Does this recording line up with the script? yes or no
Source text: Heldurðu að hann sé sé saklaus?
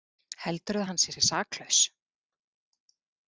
yes